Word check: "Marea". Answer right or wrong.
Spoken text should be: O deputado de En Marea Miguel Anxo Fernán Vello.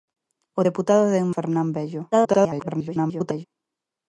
wrong